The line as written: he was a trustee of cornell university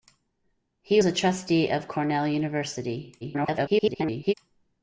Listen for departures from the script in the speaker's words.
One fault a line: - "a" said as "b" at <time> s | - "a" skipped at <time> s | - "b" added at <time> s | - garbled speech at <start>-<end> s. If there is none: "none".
- "was" skipped at 1.0 s
- garbled speech at 3.2-4.3 s